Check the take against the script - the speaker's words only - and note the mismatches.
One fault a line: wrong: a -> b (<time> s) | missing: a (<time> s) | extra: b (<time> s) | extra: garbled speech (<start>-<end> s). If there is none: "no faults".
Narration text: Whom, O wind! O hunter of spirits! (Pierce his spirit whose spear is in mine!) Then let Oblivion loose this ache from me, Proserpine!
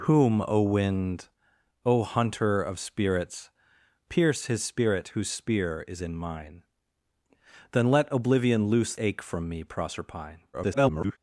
missing: this (8.9 s)
extra: garbled speech (10.5-11.2 s)